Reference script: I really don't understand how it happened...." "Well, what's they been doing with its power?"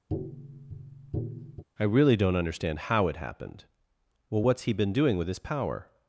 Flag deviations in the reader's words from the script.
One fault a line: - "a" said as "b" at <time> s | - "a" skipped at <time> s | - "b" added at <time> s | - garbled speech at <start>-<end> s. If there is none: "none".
- "they" said as "he" at 4.6 s
- "its" said as "his" at 5.3 s